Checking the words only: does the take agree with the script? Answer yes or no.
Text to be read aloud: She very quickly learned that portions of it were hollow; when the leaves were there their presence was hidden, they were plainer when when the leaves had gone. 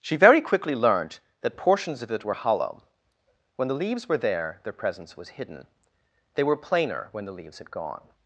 no